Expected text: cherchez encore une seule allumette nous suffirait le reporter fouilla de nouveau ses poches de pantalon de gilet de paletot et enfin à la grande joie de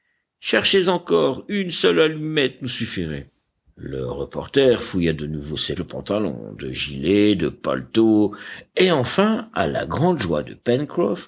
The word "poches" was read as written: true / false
false